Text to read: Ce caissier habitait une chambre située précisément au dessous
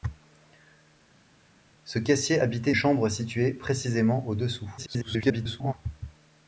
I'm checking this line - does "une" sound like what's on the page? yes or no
no